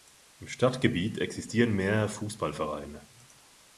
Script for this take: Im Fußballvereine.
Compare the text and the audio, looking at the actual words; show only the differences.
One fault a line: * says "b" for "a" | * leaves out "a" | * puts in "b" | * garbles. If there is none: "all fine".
* puts in "Stadtgebiet existieren mehrere"